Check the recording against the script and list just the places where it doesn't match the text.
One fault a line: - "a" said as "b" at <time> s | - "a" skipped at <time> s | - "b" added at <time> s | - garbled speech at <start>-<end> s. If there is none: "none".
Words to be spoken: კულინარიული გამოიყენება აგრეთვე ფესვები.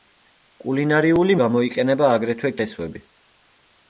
none